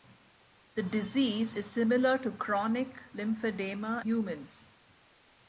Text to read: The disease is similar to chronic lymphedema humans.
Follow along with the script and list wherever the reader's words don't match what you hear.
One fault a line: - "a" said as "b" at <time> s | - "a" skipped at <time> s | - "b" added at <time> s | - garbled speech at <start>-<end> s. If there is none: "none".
none